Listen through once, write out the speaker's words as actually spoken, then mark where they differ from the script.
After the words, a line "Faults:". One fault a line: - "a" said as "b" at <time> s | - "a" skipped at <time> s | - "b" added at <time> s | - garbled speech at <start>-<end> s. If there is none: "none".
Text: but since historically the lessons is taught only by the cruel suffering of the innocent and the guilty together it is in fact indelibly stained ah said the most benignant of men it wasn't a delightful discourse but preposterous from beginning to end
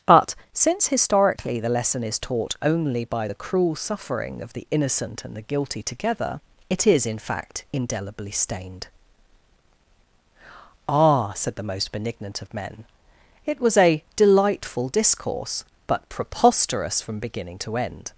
but since historically the lesson is taught only by the cruel suffering of the innocent and the guilty together it is in fact indelibly stained ah said the most benignant of men it was a delightful discourse but preposterous from beginning to end
Faults:
- "lessons" said as "lesson" at 1.7 s
- "wasn't" said as "was" at 13.6 s